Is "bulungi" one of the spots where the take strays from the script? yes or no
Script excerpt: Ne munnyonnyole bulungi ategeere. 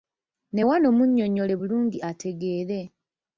no